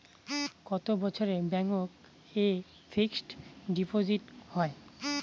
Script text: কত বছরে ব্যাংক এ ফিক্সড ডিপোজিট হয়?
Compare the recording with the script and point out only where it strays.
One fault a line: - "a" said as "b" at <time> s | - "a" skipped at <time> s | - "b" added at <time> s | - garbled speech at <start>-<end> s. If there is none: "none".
none